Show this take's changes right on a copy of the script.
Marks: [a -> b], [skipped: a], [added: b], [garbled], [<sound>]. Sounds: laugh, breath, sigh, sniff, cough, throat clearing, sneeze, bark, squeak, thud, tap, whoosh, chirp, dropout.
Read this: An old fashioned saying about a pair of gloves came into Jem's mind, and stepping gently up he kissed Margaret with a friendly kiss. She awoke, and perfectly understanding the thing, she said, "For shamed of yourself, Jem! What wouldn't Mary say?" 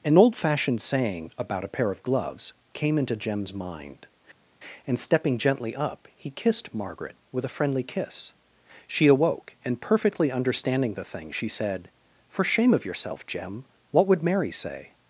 An old fashioned saying about a pair of gloves came into Jem's mind, and stepping gently up he kissed Margaret with a friendly kiss. She awoke, and perfectly understanding the thing, she said, "For [shamed -> shame] of yourself, Jem! What [wouldn't -> would] Mary say?"